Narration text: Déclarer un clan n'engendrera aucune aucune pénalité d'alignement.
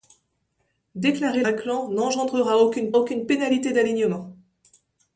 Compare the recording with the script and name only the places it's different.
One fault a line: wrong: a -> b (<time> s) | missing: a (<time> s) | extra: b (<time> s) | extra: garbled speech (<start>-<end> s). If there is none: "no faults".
no faults